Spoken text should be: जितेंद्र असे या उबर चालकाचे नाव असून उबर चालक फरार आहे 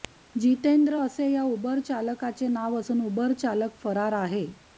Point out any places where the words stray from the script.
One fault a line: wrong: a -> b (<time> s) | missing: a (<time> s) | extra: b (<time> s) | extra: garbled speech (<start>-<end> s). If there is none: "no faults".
no faults